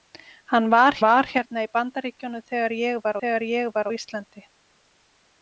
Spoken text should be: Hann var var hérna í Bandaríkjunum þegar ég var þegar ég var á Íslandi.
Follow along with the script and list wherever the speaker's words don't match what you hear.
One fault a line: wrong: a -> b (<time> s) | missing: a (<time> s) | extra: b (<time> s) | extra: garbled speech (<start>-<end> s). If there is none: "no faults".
no faults